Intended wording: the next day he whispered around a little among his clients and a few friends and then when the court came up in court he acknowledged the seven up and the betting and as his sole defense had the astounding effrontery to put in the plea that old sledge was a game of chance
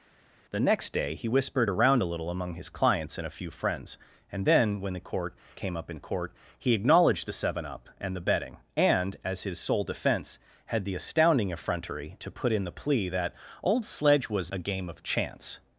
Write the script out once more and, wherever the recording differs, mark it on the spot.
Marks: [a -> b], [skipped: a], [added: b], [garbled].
the next day he whispered around a little among his clients and a few friends and then when the court came up in court he acknowledged the seven up and the betting and as his sole defense had the astounding effrontery to put in the plea that old sledge was a game of chance